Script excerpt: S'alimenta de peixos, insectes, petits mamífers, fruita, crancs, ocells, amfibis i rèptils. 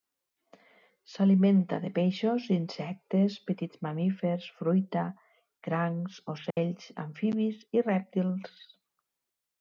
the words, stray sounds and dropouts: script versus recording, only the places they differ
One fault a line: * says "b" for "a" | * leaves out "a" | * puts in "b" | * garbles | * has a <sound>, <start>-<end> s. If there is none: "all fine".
* has a dropout, 6.5-6.6 s